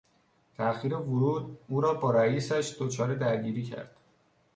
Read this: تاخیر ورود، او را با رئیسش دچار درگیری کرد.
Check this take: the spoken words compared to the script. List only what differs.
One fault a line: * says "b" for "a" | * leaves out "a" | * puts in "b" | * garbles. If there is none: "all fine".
all fine